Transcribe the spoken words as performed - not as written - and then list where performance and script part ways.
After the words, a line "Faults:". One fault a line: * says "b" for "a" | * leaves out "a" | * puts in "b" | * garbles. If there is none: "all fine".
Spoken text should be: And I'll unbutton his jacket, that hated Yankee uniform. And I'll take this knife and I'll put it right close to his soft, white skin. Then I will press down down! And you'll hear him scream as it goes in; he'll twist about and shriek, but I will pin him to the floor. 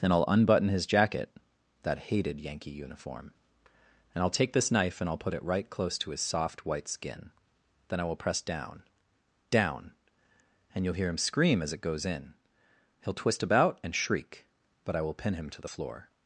Then I'll unbutton his jacket, that hated Yankee uniform. And I'll take this knife and I'll put it right close to his soft, white skin. Then I will press down down! And you'll hear him scream as it goes in; he'll twist about and shriek, but I will pin him to the floor.
Faults:
* says "Then" for "And"